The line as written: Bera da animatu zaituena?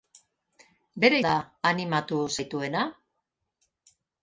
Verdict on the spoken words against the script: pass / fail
pass